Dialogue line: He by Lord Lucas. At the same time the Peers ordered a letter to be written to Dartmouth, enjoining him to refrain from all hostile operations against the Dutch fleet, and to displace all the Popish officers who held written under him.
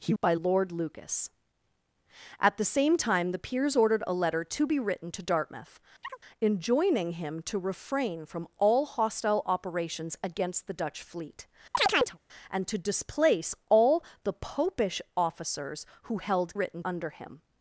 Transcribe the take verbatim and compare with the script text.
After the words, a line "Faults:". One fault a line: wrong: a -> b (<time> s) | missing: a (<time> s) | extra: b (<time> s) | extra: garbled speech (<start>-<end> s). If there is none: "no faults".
He by Lord Lucas. At the same time the Peers ordered a letter to be written to Dartmouth, enjoining him to refrain from all hostile operations against the Dutch fleet, and to displace all the Popish officers who held written under him.
Faults:
no faults